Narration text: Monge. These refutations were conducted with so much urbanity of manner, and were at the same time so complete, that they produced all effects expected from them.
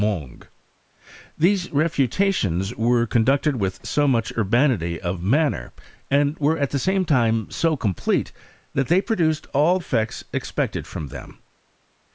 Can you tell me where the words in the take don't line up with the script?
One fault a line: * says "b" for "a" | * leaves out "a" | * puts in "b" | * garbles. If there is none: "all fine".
all fine